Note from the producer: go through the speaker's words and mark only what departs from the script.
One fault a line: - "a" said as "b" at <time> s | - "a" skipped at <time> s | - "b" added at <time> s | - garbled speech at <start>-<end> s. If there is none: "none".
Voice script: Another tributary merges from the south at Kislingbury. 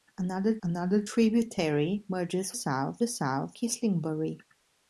- "another" added at 0.6 s
- "from" said as "south" at 2.5 s
- "at" skipped at 3.6 s